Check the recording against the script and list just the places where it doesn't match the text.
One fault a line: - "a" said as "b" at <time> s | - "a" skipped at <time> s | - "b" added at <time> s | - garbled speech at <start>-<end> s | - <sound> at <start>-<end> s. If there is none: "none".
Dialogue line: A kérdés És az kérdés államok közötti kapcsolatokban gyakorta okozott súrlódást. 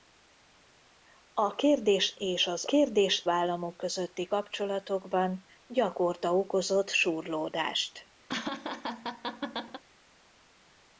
- laugh at 8.3-9.8 s